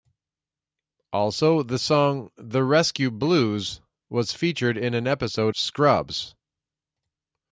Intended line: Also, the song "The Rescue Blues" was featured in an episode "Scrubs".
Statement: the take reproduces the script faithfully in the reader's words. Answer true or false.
true